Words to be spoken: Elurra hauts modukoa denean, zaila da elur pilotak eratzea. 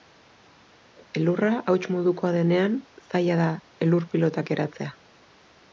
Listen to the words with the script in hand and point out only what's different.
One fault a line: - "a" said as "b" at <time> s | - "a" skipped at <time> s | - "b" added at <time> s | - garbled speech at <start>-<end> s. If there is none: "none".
none